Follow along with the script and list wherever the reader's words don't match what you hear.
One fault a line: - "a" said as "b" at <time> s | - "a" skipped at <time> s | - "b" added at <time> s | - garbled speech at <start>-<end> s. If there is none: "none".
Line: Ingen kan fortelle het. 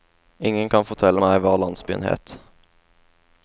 - "meg hva landsbyen" added at 1.2 s